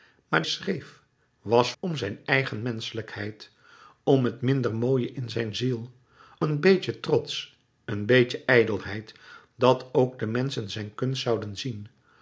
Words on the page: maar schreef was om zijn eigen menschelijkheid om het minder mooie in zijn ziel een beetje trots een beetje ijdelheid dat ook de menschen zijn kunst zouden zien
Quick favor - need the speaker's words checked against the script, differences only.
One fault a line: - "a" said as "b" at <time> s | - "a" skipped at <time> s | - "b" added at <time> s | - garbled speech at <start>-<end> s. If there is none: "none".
none